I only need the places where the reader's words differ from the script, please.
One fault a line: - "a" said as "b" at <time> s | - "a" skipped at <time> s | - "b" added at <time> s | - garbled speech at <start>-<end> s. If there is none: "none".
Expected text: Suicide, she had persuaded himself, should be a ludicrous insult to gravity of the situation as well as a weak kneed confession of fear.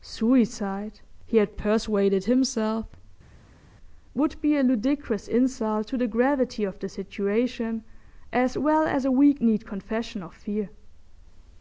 - "she" said as "he" at 1.3 s
- "should" said as "would" at 4.1 s
- "the" added at 6.0 s